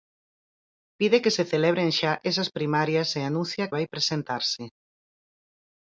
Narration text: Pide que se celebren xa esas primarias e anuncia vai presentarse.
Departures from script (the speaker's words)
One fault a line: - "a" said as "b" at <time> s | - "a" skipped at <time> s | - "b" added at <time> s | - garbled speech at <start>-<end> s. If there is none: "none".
none